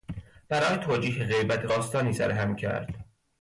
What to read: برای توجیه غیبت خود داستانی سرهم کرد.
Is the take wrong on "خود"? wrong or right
wrong